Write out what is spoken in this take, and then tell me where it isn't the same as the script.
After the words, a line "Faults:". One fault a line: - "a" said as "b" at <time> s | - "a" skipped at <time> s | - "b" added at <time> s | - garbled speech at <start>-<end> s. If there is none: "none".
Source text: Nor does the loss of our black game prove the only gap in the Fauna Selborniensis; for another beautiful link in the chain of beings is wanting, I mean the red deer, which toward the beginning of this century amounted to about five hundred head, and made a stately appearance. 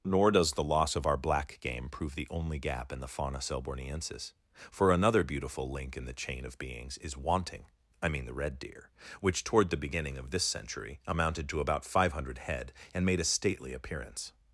Nor does the loss of our black game prove the only gap in the Fauna Selborniensis; for another beautiful link in the chain of beings is wanting, I mean the red deer, which toward the beginning of this century amounted to about five hundred head, and made a stately appearance.
Faults:
none